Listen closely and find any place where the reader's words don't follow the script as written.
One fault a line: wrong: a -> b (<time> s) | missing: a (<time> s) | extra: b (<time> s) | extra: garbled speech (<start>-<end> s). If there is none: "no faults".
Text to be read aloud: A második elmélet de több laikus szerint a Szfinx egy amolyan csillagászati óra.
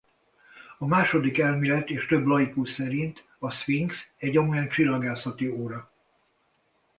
wrong: de -> és (1.9 s)